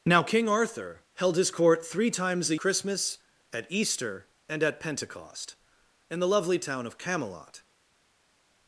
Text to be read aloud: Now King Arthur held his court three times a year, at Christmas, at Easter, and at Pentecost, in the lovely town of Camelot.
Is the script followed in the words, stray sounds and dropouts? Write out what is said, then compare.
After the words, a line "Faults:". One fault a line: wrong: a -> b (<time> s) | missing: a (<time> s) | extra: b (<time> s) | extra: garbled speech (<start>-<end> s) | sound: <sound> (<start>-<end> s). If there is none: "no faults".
Now King Arthur held his court three times a Christmas, at Easter, and at Pentecost, in the lovely town of Camelot.
Faults:
missing: year at (2.5 s)